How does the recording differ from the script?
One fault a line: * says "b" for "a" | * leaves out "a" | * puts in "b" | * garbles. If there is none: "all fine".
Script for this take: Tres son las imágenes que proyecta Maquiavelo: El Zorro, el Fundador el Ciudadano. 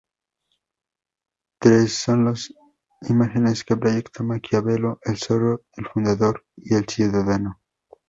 * puts in "y"